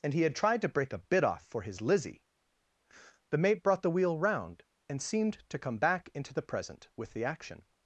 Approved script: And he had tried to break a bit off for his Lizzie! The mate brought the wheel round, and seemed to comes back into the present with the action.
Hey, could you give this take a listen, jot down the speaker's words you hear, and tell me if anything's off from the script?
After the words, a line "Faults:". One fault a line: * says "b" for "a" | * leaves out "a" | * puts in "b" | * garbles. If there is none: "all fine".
And he had tried to break a bit off for his Lizzie! The mate brought the wheel round, and seemed to come back into the present with the action.
Faults:
* says "come" for "comes"